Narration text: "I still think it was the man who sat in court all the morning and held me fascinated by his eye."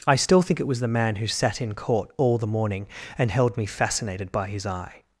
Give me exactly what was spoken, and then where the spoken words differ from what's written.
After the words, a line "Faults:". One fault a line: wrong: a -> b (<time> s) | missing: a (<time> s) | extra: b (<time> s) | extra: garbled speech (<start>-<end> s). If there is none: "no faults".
"I still think it was the man who sat in court all the morning and held me fascinated by his eye."
Faults:
no faults